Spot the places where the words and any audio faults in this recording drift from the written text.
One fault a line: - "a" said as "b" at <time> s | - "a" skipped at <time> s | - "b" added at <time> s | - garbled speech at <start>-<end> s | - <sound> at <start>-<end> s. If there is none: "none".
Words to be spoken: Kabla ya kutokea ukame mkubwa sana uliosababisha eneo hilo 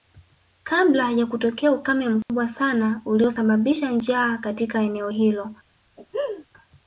- dropout at 2.2-2.3 s
- "njaa katika" added at 3.9 s
- laugh at 6.0-6.5 s